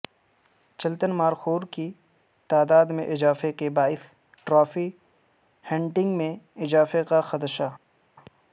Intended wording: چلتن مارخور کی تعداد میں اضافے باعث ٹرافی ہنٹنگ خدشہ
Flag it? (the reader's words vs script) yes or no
yes